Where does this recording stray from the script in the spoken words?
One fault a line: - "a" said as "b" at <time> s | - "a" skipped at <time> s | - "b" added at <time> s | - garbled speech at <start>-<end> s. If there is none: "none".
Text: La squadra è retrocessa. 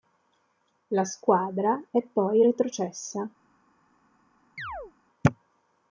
- "poi" added at 2.0 s